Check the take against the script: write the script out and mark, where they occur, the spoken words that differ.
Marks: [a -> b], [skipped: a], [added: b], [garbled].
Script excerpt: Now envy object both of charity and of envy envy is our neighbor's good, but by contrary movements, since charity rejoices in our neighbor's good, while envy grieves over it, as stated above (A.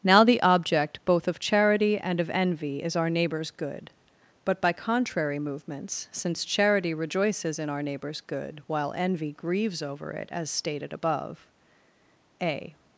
Now [envy -> the] object both of charity and of envy [skipped: envy] is our neighbor's good, but by contrary movements, since charity rejoices in our neighbor's good, while envy grieves over it, as stated above (A.